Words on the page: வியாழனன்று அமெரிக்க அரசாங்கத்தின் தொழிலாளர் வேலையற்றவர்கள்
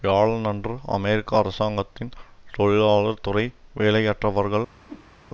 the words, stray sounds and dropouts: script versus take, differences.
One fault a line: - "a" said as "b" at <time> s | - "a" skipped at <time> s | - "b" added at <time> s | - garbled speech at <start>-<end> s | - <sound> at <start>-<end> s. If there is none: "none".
- "துறை" added at 3.2 s
- whoosh at 4.8-5.1 s